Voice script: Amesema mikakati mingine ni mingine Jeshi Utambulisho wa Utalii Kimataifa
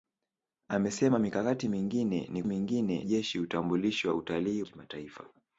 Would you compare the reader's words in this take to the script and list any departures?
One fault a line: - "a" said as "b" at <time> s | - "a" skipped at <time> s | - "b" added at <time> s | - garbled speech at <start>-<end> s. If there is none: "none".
none